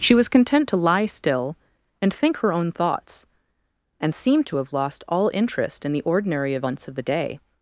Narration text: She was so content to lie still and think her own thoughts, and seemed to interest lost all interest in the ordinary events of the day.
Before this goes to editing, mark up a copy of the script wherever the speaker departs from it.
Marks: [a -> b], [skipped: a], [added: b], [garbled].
She was [skipped: so] content to lie still and think her own thoughts, and seemed to [interest -> have] lost all interest in the ordinary events of the day.